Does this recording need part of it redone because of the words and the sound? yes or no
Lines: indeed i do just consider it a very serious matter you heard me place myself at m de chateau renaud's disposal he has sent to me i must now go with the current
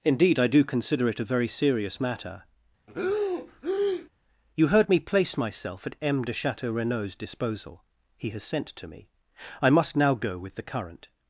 yes